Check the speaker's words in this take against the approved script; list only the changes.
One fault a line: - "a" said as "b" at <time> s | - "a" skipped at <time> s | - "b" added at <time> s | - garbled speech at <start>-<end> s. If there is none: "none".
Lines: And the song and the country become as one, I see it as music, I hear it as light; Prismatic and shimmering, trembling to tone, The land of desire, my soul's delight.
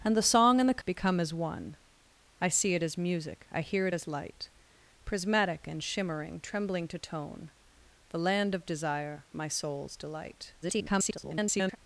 - "country" skipped at 0.8 s
- garbled speech at 10.6-11.8 s